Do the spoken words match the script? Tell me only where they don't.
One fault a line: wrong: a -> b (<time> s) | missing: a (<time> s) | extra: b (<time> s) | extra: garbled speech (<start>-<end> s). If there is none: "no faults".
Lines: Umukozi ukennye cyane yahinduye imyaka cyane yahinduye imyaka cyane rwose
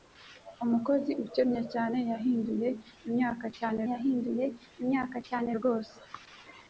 no faults